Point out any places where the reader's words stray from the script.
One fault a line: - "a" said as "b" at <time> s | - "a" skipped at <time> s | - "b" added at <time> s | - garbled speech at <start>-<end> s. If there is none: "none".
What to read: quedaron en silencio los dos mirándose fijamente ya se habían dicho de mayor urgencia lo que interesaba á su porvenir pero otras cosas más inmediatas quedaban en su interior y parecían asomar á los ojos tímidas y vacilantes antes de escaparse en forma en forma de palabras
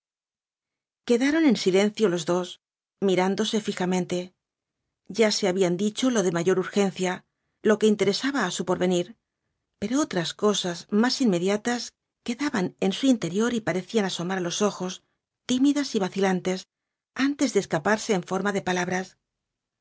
- "lo" added at 6.1 s
- "en forma" skipped at 18.5 s